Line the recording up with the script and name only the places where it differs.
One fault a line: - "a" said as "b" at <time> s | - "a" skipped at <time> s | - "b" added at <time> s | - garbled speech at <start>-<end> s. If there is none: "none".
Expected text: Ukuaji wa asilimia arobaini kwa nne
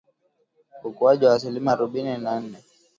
- "kwa" said as "na" at 2.2 s